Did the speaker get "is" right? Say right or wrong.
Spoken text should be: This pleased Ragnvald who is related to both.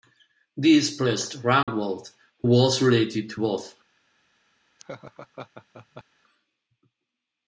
wrong